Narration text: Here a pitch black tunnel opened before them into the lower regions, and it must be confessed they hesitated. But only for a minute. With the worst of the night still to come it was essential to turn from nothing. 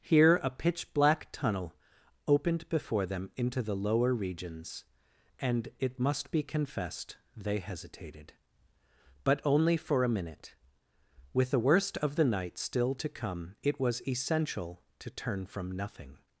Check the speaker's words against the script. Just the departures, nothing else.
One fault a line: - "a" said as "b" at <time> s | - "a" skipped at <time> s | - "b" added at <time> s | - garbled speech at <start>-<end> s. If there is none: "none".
none